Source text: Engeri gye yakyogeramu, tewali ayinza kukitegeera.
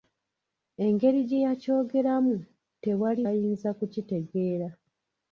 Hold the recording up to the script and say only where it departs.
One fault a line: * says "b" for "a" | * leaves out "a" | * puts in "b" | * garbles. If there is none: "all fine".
all fine